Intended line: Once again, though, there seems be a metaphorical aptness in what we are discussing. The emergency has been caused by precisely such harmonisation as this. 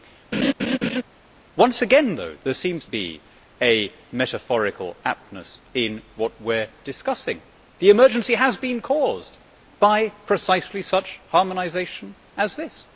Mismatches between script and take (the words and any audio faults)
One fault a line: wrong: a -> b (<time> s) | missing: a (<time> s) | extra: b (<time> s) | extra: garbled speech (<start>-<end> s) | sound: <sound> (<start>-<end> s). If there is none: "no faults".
sound: laugh (0.3-1.0 s)